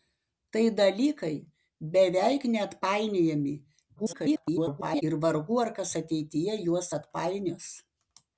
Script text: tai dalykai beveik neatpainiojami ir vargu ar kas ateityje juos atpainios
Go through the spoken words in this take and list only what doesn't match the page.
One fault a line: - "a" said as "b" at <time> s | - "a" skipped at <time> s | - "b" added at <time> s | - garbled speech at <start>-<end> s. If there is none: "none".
- garbled speech at 4.0-5.0 s